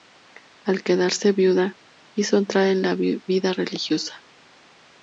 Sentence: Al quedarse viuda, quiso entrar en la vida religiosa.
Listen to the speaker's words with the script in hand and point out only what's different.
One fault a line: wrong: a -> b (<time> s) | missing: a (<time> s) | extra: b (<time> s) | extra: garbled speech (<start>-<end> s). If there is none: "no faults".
no faults